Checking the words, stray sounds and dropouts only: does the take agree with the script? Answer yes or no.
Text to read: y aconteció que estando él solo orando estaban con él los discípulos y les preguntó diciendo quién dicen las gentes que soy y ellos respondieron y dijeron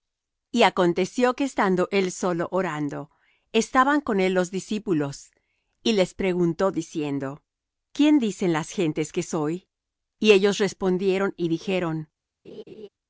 no